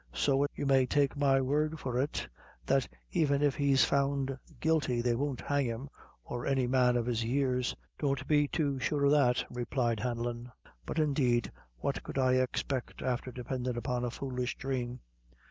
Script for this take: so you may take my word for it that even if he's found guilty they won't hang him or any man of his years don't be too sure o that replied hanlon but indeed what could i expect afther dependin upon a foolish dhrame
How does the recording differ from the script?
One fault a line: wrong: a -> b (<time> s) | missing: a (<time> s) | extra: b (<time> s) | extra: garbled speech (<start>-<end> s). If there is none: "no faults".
no faults